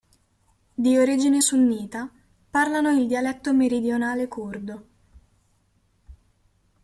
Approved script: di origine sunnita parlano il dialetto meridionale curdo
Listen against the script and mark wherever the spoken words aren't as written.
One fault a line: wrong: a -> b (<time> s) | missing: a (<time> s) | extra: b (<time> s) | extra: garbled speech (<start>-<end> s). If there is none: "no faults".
no faults